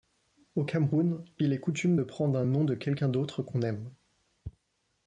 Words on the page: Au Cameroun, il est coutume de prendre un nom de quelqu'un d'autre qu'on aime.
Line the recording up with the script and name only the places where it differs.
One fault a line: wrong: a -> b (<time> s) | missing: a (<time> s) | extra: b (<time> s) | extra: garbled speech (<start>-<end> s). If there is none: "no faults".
no faults